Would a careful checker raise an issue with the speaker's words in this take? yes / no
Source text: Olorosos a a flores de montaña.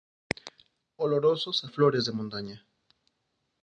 no